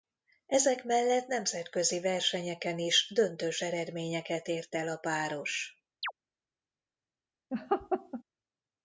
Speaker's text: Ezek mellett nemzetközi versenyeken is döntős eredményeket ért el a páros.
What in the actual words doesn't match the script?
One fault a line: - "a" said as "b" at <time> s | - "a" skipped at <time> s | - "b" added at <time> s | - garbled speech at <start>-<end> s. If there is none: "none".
none